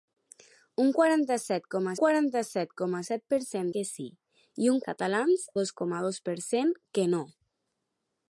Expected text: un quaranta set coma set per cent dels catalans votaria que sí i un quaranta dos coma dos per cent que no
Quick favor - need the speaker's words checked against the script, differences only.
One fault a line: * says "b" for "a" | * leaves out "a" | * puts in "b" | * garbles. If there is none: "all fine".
* puts in "quaranta"
* puts in "coma set"
* leaves out "dels catalans votaria"
* says "catalans" for "quaranta"